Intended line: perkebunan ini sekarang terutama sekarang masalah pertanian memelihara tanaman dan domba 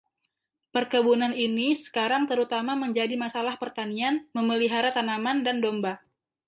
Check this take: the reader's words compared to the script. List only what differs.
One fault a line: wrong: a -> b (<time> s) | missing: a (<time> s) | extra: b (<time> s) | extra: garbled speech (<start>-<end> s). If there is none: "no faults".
wrong: sekarang -> menjadi (2.7 s)